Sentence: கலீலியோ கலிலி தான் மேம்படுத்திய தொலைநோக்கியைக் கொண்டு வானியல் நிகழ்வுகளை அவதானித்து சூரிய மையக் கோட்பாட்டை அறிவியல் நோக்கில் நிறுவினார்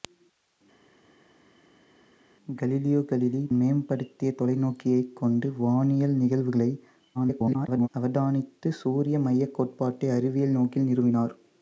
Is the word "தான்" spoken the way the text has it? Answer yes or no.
no